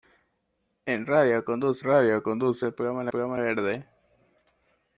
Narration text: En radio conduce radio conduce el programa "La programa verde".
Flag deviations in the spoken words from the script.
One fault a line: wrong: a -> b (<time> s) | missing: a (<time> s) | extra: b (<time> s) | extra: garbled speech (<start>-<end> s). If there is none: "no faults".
no faults